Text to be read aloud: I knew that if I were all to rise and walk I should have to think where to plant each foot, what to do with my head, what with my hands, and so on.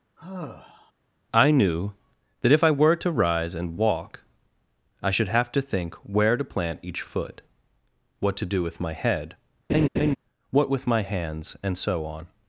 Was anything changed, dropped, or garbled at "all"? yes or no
yes